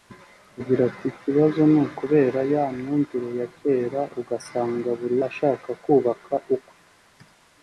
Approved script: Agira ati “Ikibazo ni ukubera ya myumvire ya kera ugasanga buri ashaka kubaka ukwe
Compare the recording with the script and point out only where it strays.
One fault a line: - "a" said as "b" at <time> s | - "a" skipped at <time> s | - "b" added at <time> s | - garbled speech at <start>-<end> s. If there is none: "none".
none